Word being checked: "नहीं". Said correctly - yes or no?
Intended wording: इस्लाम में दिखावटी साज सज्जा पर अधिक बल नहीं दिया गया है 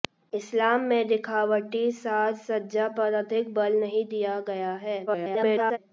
yes